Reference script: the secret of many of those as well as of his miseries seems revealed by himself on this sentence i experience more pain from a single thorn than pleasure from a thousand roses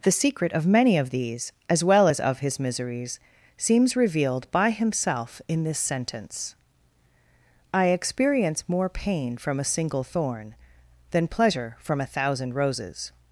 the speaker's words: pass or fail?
fail